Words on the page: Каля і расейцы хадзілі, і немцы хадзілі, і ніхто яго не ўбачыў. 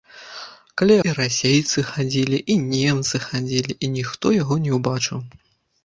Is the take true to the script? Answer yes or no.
yes